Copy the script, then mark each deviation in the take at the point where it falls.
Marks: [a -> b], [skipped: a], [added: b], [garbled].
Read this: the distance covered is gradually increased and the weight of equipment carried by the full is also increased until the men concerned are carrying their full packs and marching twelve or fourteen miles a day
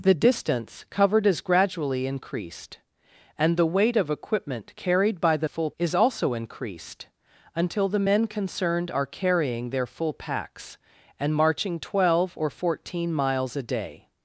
the distance covered is gradually increased and the weight of equipment carried by the full is also increased until the men concerned are carrying their full packs and marching twelve or fourteen miles a day